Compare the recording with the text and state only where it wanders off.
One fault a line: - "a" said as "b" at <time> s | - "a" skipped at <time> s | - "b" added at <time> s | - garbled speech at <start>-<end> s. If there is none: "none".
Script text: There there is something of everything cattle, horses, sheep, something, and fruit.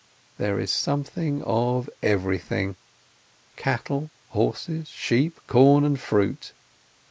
- "there" skipped at 0.6 s
- "something" said as "corn" at 5.5 s